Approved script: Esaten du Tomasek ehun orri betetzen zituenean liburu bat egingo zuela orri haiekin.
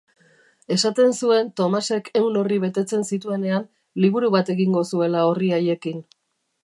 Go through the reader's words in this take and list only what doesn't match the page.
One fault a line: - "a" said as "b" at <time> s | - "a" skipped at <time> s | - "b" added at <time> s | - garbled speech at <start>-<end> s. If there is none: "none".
- "du" said as "zuen" at 1.2 s